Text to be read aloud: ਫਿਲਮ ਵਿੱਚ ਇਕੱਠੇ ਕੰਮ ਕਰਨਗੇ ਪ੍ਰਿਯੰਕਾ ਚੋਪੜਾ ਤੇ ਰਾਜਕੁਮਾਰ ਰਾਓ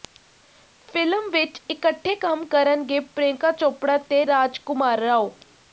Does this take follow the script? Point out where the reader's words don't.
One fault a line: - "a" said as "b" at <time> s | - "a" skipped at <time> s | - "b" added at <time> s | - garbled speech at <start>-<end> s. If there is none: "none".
none